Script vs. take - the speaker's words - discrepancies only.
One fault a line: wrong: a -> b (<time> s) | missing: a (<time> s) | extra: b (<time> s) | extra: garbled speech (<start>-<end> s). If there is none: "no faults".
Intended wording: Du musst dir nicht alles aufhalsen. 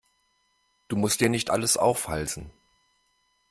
no faults